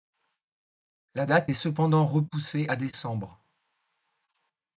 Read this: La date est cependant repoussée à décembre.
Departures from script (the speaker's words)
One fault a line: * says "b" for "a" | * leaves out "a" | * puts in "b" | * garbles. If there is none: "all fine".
all fine